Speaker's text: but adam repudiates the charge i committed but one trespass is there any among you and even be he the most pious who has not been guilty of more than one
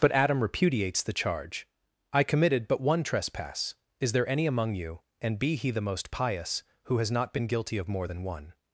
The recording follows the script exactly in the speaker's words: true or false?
false